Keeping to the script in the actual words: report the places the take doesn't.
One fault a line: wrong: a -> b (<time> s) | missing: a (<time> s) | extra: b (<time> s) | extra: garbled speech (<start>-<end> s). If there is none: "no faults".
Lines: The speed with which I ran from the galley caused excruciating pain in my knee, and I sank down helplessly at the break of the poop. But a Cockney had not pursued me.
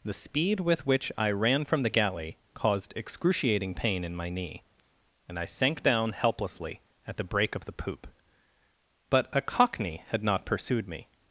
no faults